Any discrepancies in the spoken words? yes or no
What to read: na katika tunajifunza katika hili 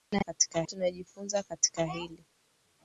no